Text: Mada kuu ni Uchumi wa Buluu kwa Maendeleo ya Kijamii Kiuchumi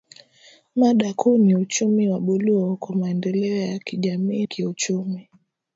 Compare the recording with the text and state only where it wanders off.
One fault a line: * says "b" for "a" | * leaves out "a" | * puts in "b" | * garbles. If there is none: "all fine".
all fine